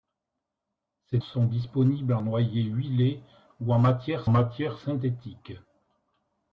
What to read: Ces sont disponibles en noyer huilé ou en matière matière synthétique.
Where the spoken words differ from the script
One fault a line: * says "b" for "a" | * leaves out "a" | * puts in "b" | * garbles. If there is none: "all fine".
all fine